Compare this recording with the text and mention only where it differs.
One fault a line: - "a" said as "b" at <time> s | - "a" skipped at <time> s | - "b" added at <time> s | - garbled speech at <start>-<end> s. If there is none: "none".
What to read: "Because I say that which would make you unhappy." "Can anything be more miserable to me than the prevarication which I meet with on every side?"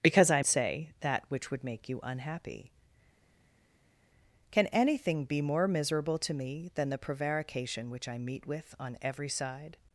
none